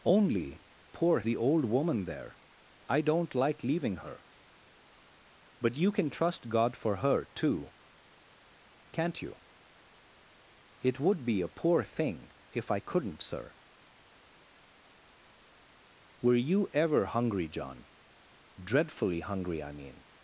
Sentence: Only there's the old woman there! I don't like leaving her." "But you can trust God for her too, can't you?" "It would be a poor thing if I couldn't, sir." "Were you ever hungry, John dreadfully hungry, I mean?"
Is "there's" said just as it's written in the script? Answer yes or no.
no